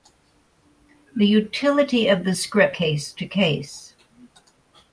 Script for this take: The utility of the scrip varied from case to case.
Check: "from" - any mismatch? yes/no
yes